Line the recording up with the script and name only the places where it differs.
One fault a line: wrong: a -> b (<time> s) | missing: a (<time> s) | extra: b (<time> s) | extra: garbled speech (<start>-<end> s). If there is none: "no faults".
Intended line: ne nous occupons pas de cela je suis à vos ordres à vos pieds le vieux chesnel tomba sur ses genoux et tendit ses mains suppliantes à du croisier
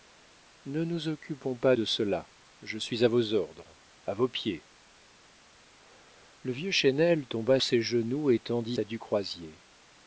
missing: sur (7.6 s)
missing: ses mains suppliantes (8.8 s)